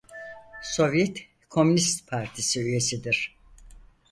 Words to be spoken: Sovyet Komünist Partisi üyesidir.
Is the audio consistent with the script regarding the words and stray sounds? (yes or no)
yes